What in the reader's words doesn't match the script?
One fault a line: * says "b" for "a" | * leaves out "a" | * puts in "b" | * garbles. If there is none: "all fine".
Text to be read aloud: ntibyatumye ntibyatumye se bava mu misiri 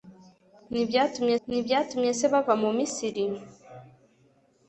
all fine